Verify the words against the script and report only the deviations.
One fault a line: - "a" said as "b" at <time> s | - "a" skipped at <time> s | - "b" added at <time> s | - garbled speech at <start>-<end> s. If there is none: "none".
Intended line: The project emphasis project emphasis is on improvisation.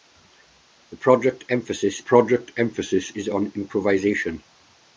none